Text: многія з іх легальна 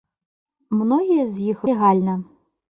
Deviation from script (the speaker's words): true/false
false